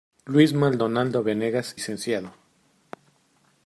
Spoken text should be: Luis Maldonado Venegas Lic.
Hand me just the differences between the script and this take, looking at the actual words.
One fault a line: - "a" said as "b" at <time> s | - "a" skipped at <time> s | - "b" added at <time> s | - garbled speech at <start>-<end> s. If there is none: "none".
none